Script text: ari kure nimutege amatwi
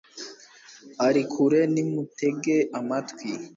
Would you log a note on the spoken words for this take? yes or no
no